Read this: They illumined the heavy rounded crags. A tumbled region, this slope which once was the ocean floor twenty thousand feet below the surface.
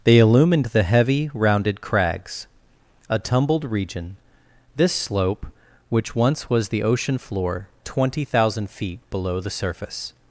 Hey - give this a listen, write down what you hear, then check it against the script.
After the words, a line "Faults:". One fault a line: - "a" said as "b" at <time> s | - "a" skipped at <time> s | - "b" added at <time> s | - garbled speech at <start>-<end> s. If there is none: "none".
They illumined the heavy rounded crags. A tumbled region, this slope which once was the ocean floor twenty thousand feet below the surface.
Faults:
none